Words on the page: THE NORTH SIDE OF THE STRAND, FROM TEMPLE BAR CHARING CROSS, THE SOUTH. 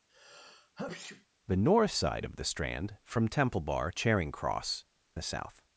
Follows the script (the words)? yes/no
yes